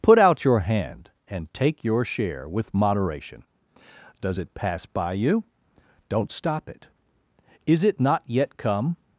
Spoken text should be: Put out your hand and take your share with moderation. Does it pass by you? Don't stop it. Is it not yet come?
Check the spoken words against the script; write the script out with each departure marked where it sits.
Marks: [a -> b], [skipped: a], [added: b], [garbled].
Put out your hand and take your share with moderation. Does it pass by you? Don't stop it. Is it not yet come?